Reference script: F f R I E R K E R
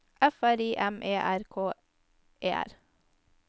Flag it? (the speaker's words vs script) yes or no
yes